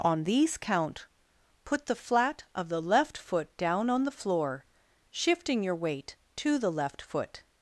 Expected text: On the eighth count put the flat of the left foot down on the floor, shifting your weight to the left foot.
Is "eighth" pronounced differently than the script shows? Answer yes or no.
yes